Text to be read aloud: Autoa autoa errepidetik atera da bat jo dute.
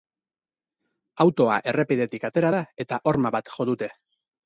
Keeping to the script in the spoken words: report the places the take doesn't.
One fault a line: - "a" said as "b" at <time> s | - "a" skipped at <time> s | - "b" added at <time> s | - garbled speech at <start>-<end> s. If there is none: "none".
- "autoa" skipped at 1.6 s
- "eta horma" added at 2.8 s